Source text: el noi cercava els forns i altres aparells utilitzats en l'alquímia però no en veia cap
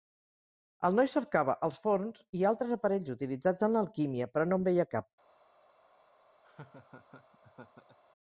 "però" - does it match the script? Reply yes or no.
yes